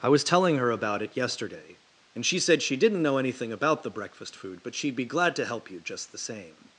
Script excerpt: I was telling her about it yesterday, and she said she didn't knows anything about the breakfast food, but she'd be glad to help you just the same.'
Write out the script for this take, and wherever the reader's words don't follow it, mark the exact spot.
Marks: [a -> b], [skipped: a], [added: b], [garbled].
I was telling her about it yesterday, and she said she didn't [knows -> know] anything about the breakfast food, but she'd be glad to help you just the same.'